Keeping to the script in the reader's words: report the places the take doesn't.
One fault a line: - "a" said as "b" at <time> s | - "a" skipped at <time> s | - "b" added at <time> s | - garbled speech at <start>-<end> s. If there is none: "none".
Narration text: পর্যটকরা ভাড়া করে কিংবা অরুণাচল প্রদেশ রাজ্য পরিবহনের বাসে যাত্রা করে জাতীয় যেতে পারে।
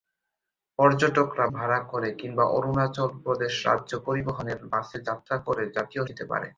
none